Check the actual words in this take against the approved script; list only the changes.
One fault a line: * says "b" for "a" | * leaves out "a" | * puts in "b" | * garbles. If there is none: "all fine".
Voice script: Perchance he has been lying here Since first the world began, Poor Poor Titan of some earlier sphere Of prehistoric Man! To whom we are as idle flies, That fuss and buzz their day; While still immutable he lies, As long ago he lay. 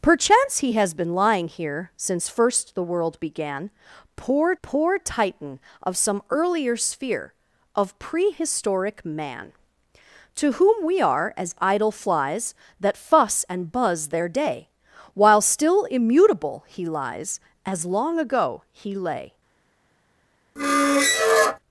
all fine